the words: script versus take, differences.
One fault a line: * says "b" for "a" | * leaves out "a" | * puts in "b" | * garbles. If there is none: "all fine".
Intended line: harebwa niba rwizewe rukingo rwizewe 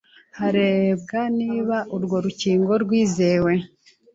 * says "urwo" for "rwizewe"